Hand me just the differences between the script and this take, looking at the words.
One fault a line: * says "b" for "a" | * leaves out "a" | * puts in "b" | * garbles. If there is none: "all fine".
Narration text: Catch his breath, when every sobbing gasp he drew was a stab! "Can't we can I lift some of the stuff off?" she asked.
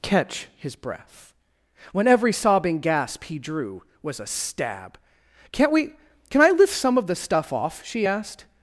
all fine